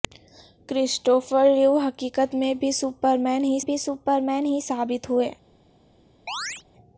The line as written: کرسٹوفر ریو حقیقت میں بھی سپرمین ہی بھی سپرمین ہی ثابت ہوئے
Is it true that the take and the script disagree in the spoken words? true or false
false